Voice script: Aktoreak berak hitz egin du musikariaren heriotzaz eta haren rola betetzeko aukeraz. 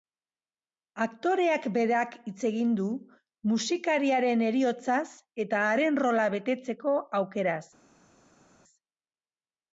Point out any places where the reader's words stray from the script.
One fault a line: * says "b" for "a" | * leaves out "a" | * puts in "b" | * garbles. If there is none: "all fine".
all fine